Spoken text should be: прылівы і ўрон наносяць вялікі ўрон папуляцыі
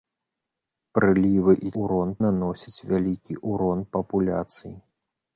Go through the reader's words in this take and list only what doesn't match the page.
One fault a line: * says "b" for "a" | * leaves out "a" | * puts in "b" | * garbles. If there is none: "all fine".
all fine